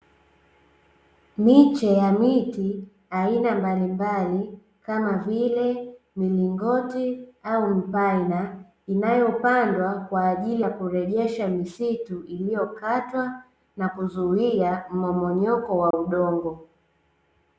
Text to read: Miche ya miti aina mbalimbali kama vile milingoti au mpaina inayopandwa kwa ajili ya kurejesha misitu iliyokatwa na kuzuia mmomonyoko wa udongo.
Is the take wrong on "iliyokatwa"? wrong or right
right